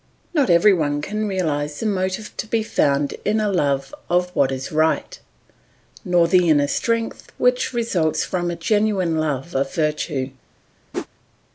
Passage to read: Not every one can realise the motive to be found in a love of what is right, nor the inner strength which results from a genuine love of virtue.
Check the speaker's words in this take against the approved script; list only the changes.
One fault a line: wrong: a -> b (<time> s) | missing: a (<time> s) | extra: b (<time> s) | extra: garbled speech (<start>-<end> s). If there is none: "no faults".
no faults